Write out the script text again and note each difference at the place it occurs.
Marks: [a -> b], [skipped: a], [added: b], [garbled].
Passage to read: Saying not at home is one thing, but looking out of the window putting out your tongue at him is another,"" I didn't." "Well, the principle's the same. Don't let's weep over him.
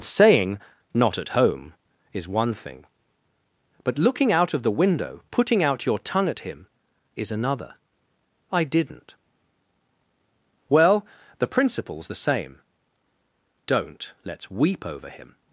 Saying not at home is one thing, but looking out of the window putting out your tongue at him is another,"" I didn't." "Well, the principle's the same. Don't let's weep over him.